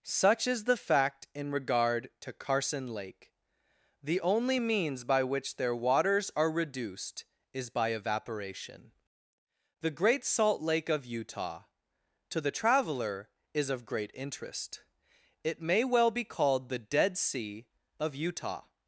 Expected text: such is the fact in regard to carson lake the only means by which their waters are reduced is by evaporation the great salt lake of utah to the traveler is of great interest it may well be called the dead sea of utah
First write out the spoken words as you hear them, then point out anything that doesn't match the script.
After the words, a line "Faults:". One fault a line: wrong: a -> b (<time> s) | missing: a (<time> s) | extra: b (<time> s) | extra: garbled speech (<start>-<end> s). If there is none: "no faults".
such is the fact in regard to carson lake the only means by which their waters are reduced is by evaporation the great salt lake of utah to the traveler is of great interest it may well be called the dead sea of utah
Faults:
no faults